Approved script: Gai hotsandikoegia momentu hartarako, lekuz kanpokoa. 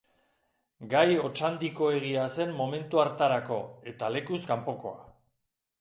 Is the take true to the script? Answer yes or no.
no